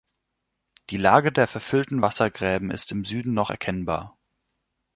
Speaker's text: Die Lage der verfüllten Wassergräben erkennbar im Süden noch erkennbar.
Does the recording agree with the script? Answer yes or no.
no